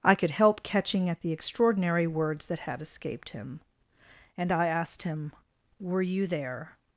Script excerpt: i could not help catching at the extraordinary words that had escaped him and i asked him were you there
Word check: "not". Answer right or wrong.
wrong